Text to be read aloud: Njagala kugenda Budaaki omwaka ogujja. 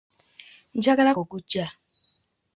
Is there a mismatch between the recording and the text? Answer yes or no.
yes